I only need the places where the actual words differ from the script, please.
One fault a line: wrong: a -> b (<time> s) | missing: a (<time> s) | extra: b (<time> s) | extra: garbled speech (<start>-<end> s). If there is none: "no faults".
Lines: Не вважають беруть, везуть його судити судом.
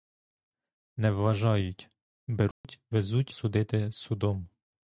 missing: його (3.3 s)